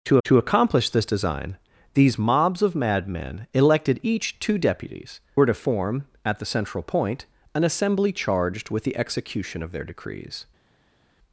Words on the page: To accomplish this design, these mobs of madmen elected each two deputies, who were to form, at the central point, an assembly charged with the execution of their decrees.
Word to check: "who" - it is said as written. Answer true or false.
false